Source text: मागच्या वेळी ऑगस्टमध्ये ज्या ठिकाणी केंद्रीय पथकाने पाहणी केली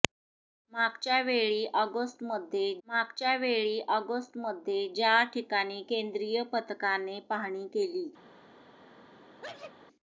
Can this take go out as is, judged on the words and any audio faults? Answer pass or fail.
fail